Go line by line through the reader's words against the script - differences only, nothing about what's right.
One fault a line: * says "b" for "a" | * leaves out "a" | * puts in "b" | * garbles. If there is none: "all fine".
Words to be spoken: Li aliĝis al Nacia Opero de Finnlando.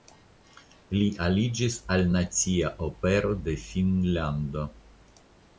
all fine